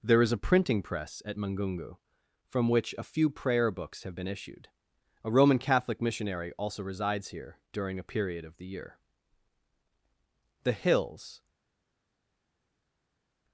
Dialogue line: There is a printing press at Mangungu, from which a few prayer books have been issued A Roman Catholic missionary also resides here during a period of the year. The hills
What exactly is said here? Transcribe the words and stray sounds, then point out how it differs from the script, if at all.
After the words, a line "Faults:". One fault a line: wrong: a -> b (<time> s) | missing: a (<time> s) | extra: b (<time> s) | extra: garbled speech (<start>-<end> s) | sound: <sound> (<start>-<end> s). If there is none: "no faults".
There is a printing press at Mangungu, from which a few prayer books have been issued A Roman Catholic missionary also resides here during a period of the year. The hills
Faults:
no faults